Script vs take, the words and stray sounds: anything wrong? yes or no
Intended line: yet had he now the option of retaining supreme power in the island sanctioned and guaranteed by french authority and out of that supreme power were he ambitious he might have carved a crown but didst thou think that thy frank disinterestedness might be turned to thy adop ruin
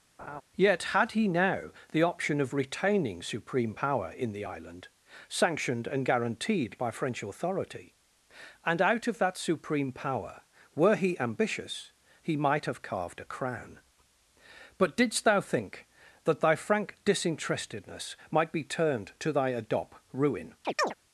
yes